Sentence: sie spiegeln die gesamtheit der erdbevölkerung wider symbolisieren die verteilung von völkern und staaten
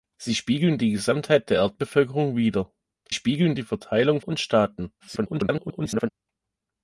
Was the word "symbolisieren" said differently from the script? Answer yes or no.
yes